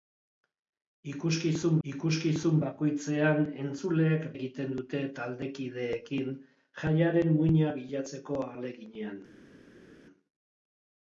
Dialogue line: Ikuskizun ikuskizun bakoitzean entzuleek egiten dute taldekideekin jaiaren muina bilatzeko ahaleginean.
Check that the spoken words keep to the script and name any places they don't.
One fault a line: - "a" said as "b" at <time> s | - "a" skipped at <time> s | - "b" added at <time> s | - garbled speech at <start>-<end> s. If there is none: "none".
none